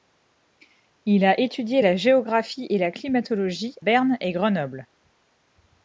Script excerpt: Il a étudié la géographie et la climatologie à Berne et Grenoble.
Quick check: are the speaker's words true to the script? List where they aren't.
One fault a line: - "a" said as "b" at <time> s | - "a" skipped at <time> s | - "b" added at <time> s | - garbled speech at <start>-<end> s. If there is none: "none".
- "à" skipped at 3.8 s